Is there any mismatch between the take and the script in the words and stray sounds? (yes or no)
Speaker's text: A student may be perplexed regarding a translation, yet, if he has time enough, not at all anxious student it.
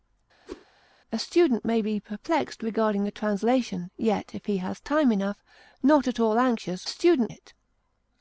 yes